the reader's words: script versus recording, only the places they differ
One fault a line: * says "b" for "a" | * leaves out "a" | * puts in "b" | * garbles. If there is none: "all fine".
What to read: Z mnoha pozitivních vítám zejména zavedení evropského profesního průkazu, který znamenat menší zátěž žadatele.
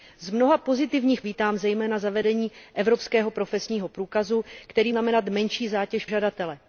all fine